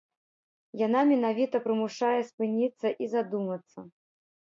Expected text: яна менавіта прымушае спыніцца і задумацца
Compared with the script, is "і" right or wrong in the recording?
right